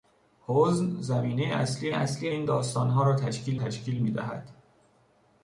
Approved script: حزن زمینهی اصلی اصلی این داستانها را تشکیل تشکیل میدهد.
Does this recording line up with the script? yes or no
yes